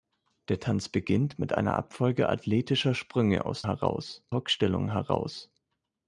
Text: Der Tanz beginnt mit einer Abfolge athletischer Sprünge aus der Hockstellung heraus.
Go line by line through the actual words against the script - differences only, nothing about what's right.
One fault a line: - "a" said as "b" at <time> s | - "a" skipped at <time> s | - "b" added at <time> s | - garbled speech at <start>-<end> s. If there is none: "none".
- "der" said as "heraus" at 3.6 s